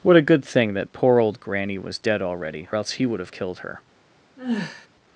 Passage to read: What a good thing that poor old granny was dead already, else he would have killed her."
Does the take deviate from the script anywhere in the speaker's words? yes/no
no